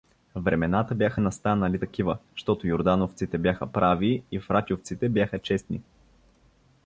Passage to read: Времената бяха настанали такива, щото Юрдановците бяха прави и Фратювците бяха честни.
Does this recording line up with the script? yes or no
yes